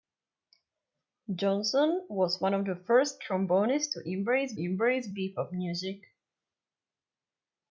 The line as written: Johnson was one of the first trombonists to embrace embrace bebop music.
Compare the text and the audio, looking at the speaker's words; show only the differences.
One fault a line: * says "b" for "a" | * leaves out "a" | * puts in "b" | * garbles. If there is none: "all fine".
all fine